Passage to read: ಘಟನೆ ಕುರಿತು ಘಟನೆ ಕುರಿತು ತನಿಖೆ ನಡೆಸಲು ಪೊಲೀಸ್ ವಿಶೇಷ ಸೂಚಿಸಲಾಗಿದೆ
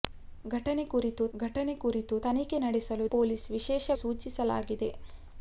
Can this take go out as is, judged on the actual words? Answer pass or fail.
pass